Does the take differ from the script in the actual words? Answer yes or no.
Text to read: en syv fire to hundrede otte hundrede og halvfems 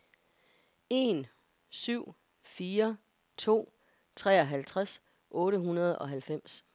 yes